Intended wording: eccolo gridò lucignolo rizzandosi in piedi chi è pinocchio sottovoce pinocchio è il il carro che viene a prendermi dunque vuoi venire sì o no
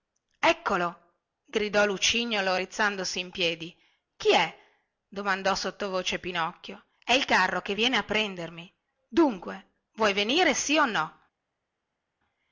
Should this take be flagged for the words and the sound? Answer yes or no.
yes